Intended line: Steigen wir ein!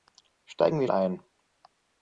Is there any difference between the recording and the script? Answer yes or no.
no